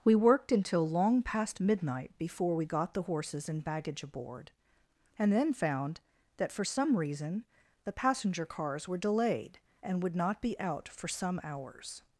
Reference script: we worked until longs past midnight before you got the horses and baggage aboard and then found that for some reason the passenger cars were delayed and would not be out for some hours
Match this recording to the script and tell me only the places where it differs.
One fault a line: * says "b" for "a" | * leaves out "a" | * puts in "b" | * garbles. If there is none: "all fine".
* says "long" for "longs"
* says "we" for "you"